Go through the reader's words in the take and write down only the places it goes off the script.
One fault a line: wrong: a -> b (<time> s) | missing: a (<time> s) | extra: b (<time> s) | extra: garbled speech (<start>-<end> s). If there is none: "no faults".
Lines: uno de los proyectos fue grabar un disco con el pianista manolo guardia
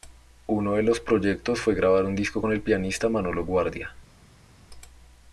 no faults